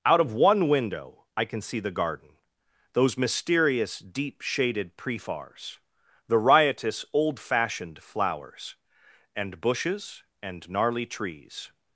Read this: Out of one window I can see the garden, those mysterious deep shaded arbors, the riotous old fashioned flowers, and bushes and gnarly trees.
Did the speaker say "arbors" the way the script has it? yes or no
no